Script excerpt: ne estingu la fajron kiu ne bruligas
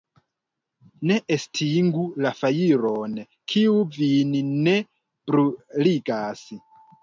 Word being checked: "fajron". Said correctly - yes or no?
yes